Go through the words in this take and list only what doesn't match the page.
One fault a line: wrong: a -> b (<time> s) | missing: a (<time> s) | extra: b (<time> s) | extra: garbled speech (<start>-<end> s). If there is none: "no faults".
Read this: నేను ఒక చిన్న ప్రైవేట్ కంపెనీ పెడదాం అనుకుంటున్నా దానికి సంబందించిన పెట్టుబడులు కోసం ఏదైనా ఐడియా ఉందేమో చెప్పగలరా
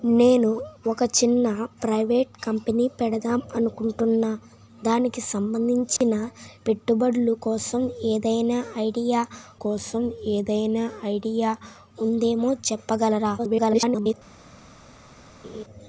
extra: కోసం ఏదైనా ఐడియా (9.6 s)
extra: garbled speech (13.4-14.1 s)